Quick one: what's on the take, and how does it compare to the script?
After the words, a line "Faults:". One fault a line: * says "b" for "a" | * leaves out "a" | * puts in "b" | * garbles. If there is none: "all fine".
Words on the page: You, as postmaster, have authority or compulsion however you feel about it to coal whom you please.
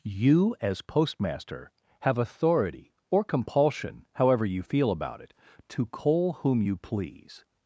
You, as postmaster, have authority or compulsion however you feel about it to coal whom you please.
Faults:
all fine